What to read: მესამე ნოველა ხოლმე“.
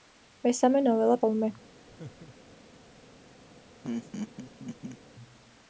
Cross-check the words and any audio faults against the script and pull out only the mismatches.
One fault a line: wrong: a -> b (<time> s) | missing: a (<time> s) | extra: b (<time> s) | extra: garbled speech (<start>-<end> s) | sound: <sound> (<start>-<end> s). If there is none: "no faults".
sound: laugh (1.9-2.6 s)
sound: laugh (3.8-5.0 s)